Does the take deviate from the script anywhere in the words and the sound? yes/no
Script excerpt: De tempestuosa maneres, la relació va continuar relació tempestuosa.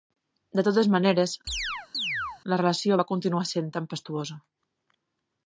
yes